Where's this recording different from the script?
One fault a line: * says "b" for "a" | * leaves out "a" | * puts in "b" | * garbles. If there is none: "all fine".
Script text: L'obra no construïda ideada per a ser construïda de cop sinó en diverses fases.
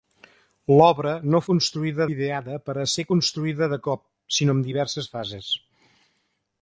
all fine